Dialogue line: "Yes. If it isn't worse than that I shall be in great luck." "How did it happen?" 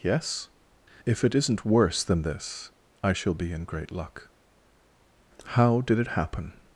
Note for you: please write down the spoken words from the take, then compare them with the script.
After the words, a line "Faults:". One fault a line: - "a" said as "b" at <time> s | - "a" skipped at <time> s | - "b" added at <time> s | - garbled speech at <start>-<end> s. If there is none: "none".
"Yes. If it isn't worse than this I shall be in great luck." "How did it happen?"
Faults:
- "that" said as "this" at 2.2 s